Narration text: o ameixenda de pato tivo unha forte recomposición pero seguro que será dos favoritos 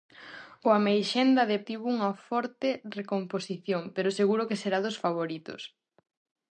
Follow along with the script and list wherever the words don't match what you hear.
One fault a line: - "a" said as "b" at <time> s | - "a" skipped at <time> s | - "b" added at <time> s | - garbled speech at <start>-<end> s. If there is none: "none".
- "pato" skipped at 1.6 s